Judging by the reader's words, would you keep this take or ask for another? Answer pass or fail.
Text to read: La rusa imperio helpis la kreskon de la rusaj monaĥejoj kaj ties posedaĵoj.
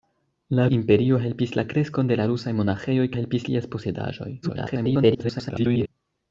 fail